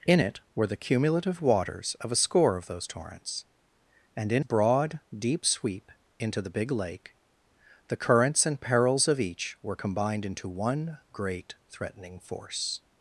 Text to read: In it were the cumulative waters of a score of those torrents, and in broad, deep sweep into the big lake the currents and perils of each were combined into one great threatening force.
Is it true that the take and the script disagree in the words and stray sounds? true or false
false